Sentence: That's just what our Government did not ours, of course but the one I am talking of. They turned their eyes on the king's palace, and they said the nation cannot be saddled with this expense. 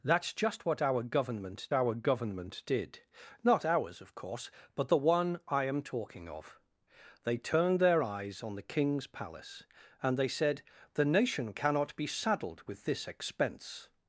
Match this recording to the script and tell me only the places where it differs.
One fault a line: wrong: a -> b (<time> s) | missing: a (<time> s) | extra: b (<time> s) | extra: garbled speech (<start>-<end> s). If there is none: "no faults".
extra: our Government (1.7 s)